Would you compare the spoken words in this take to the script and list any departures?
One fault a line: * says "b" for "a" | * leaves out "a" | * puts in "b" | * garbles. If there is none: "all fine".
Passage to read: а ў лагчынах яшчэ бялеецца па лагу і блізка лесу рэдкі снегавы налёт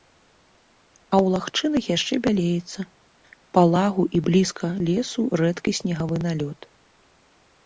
all fine